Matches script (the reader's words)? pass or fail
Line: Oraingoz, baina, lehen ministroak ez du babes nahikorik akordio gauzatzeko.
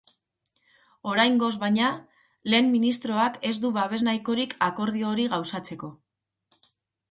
fail